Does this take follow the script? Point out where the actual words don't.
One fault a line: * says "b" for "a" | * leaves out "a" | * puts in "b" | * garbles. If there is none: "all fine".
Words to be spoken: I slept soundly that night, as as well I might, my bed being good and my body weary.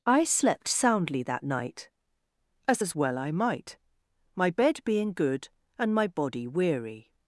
all fine